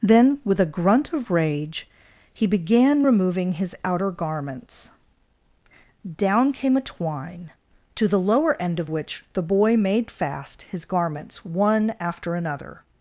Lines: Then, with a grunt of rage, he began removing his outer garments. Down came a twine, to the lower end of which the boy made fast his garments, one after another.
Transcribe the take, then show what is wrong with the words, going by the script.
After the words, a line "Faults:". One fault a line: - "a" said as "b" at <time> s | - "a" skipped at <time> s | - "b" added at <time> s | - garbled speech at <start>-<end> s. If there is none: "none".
Then, with a grunt of rage, he began removing his outer garments. Down came a twine, to the lower end of which the boy made fast his garments, one after another.
Faults:
none